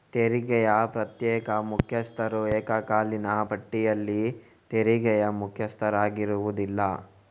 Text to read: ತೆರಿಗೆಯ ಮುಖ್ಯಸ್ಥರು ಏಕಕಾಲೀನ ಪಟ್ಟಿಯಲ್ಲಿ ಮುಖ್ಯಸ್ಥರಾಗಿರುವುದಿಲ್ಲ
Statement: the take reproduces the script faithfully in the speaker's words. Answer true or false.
false